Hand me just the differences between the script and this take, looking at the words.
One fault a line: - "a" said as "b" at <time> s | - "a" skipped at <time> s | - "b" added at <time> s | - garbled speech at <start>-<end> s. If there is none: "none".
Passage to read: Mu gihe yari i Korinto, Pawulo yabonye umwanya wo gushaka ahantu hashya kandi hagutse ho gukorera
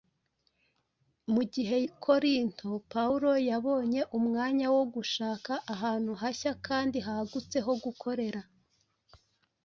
- "yari" skipped at 1.8 s